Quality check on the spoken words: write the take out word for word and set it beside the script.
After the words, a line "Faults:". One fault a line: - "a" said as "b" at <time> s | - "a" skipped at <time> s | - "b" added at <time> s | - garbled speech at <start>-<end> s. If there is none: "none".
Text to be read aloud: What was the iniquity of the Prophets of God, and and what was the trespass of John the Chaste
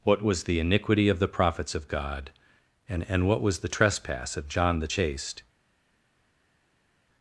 What was the iniquity of the Prophets of God, and and what was the trespass of John the Chaste
Faults:
none